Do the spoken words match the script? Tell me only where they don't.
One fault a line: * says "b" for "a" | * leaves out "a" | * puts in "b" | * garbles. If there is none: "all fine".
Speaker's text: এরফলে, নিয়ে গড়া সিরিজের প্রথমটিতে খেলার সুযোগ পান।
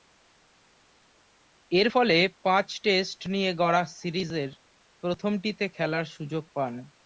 * puts in "পাঁচ টেস্ট"